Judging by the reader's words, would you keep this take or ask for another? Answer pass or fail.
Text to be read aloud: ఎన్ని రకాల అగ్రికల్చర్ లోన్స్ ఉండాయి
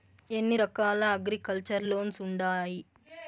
pass